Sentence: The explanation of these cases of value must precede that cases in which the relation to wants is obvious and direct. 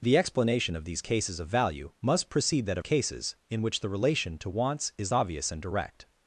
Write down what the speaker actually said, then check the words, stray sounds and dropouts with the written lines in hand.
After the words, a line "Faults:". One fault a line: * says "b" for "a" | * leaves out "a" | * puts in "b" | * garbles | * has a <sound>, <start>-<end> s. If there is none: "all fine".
The explanation of these cases of value must precede that cases in which the relation to wants is obvious and direct.
Faults:
all fine